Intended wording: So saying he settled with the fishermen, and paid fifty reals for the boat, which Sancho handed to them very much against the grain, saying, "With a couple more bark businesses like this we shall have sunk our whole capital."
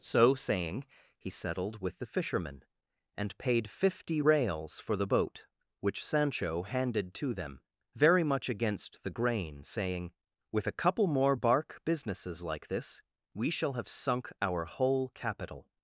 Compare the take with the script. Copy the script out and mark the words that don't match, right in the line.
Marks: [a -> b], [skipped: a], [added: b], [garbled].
So saying he settled with the fishermen, and paid fifty reals for the boat, which Sancho handed to them very much against the grain, saying, "With a couple more bark businesses like this we shall have sunk our whole capital."